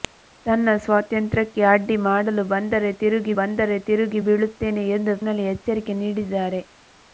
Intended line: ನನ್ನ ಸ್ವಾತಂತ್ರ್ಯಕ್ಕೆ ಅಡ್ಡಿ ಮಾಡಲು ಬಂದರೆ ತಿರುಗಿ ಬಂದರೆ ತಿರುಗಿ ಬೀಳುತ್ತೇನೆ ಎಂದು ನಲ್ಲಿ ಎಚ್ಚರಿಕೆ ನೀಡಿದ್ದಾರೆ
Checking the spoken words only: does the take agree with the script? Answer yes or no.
yes